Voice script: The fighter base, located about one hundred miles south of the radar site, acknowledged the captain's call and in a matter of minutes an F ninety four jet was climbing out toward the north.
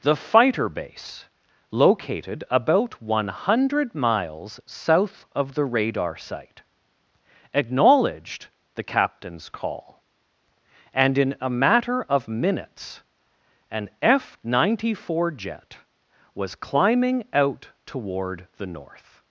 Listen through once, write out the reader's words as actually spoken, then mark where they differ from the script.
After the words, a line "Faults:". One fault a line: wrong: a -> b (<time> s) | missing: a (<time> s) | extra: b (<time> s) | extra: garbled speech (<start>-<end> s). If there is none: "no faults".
The fighter base, located about one hundred miles south of the radar site, acknowledged the captain's call and in a matter of minutes an F ninety four jet was climbing out toward the north.
Faults:
no faults